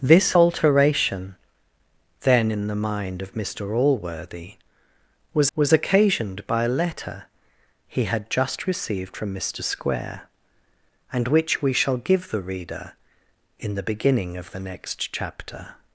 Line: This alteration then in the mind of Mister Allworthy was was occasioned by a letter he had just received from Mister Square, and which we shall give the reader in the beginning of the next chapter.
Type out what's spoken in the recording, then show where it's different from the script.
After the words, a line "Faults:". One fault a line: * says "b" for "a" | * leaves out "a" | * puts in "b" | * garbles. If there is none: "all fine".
This alteration then in the mind of Mister Allworthy was was occasioned by a letter he had just received from Mister Square, and which we shall give the reader in the beginning of the next chapter.
Faults:
all fine